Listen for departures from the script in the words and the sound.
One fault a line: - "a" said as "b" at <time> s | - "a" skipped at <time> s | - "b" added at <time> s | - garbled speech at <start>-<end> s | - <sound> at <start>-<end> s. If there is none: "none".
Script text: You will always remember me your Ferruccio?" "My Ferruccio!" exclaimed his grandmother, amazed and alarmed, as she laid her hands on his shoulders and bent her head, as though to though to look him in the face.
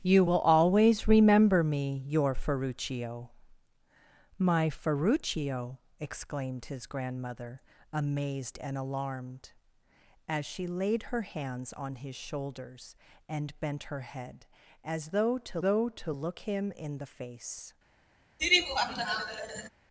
- laugh at 18.4-19.7 s